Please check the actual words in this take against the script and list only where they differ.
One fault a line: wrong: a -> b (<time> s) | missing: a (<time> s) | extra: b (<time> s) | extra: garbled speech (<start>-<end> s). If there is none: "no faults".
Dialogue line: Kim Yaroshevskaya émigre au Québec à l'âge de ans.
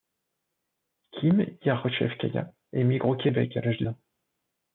no faults